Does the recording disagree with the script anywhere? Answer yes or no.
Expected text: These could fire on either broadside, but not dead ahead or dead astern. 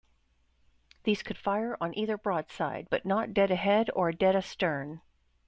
no